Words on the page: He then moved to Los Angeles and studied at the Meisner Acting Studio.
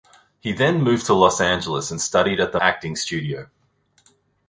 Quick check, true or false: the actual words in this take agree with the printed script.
false